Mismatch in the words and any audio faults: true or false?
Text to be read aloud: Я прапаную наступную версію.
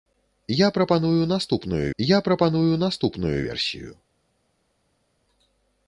true